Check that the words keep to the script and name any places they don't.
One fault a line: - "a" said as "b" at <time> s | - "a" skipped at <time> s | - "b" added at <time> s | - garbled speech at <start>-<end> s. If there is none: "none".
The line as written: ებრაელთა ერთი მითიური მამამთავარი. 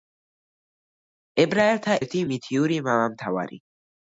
none